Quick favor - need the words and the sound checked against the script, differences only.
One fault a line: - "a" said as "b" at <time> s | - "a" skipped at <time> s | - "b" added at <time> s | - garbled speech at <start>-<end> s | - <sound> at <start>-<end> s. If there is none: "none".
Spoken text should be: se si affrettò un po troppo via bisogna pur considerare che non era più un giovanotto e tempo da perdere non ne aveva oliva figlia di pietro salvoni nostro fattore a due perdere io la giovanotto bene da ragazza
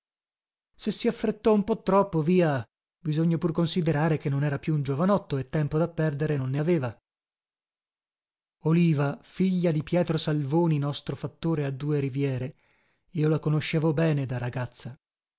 - "perdere" said as "riviere" at 12.0 s
- "giovanotto" said as "conoscevo" at 13.4 s